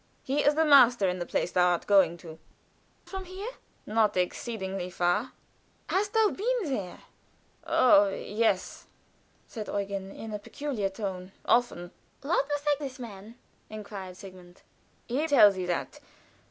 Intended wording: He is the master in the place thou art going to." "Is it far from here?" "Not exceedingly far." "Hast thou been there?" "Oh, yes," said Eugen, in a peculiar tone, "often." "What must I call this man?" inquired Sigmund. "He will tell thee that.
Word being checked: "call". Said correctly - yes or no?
no